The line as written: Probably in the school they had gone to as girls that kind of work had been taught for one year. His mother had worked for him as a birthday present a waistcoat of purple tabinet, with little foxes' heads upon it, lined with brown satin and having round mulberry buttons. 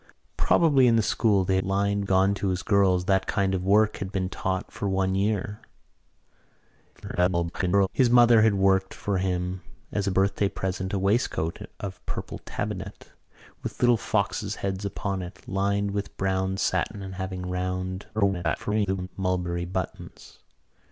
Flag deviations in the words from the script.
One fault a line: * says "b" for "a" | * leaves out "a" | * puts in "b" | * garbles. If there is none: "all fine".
* says "lined" for "had"
* garbles
* garbles